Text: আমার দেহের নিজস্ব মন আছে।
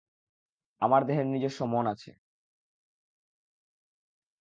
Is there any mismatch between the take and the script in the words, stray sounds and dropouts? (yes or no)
no